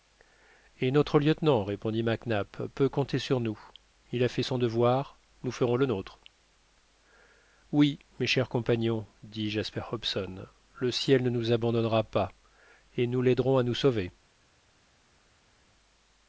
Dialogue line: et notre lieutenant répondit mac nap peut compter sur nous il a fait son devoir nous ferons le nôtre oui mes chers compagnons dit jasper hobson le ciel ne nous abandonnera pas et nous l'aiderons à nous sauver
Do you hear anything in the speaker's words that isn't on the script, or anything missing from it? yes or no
no